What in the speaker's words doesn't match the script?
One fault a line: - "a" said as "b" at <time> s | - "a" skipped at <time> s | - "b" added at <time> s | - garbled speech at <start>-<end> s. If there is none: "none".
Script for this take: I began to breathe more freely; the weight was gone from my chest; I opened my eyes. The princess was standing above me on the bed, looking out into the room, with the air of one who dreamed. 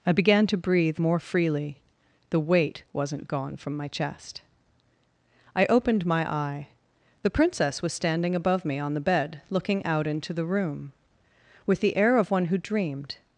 - "was" said as "wasn't" at 2.9 s
- "eyes" said as "eye" at 6.3 s